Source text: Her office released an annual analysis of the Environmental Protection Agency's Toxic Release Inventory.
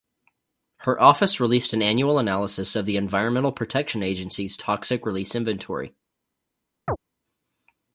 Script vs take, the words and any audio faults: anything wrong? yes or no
yes